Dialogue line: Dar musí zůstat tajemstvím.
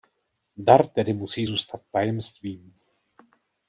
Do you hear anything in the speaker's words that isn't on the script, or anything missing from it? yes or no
yes